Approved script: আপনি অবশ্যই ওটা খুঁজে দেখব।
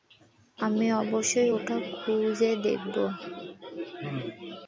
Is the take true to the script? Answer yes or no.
no